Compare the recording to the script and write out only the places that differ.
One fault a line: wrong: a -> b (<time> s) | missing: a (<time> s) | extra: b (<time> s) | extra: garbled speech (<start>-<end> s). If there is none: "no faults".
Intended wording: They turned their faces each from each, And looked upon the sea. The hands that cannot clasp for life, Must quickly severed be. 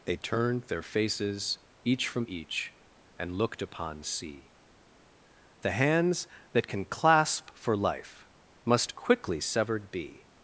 missing: the (4.0 s)
wrong: cannot -> can (6.7 s)